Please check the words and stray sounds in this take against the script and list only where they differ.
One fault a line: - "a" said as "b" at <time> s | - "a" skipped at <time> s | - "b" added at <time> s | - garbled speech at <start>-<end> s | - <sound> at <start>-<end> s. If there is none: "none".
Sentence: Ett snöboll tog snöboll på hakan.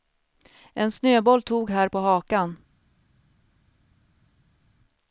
- "Ett" said as "En" at 0.7 s
- "snöboll" said as "här" at 1.7 s